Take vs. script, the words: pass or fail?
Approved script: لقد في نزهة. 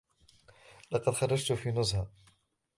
fail